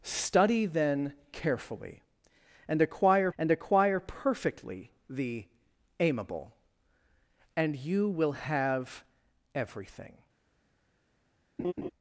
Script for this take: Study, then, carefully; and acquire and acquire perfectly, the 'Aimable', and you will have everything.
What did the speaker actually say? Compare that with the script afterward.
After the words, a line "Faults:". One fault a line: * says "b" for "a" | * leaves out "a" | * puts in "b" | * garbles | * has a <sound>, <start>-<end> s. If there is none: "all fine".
Study, then, carefully; and acquire and acquire perfectly, the 'Aimable', and you will have everything.
Faults:
* has a laugh, 11.6-11.9 s